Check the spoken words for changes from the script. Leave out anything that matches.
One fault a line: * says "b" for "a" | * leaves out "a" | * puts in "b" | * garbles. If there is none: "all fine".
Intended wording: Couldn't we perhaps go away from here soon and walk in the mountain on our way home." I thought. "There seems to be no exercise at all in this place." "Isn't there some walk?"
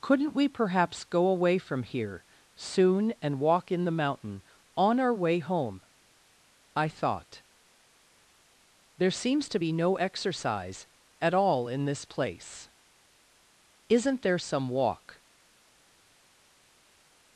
all fine